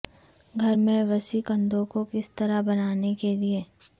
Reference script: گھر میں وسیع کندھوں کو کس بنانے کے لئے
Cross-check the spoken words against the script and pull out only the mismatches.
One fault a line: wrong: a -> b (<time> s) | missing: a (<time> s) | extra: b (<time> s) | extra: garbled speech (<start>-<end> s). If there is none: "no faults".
extra: طرح (2.3 s)